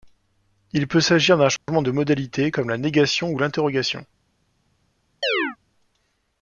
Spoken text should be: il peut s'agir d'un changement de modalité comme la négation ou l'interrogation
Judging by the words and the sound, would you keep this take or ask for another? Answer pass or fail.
fail